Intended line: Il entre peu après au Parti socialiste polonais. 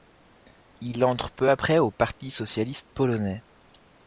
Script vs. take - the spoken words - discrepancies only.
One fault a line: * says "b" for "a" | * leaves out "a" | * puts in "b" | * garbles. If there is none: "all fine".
all fine